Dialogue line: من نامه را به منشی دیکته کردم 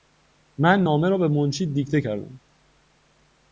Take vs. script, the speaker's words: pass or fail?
pass